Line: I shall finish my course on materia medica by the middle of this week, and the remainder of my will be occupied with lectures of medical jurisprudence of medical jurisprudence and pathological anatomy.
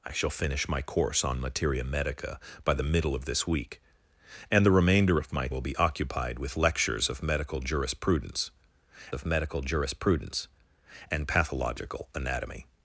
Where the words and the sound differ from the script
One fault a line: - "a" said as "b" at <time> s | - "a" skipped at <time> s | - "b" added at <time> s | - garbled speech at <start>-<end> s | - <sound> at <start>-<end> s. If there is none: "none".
none